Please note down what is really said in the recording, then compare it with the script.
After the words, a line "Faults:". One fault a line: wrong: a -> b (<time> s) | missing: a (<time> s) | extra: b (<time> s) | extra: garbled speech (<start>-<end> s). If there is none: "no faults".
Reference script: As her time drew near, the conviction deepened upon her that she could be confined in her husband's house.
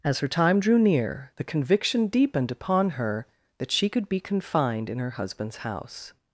As her time drew near, the conviction deepened upon her that she could be confined in her husband's house.
Faults:
no faults